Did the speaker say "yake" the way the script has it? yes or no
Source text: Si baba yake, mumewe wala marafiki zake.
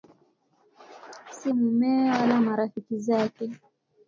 no